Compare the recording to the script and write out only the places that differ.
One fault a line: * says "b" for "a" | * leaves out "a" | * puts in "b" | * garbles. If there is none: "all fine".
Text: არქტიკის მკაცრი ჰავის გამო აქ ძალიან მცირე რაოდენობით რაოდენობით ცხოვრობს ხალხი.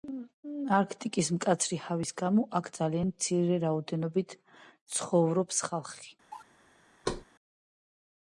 * leaves out "რაოდენობით"